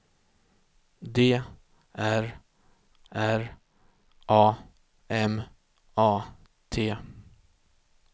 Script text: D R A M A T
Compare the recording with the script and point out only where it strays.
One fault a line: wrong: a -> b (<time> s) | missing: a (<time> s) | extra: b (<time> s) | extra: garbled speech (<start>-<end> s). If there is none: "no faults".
extra: R (3.1 s)